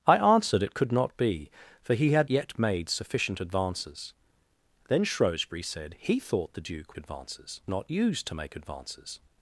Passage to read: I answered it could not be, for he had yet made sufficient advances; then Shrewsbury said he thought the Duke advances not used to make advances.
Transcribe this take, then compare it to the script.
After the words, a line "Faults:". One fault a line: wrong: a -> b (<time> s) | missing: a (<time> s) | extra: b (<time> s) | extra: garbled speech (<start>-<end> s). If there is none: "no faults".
I answered it could not be, for he had yet made sufficient advances; then Shrewsbury said he thought the Duke advances not used to make advances.
Faults:
no faults